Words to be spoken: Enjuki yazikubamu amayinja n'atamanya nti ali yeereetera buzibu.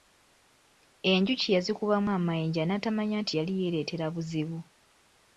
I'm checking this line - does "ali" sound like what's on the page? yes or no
no